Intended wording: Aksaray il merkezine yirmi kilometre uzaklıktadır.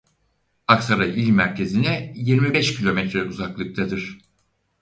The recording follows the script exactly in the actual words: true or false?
false